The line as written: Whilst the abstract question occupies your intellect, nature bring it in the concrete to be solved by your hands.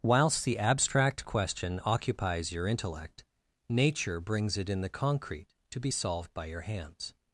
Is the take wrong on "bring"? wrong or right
wrong